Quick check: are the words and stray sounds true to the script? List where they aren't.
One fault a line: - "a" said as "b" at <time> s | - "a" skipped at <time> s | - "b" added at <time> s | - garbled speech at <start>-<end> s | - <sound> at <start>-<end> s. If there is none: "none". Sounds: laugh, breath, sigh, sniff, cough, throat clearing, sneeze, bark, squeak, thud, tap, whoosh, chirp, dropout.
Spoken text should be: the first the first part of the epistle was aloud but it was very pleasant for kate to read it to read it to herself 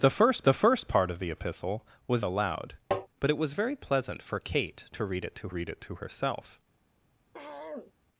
- tap at 2.9-3.1 s
- throat clearing at 7.3-7.9 s